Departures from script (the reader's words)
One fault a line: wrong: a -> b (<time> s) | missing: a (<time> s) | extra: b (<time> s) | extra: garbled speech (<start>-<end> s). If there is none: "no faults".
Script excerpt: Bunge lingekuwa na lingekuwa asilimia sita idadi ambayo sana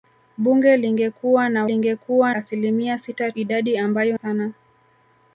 no faults